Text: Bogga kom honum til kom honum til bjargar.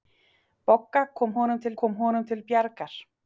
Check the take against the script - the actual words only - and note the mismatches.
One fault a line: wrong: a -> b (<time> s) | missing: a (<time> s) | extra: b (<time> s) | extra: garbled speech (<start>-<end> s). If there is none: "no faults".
no faults